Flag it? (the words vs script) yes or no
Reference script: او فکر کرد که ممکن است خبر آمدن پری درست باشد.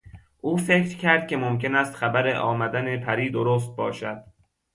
no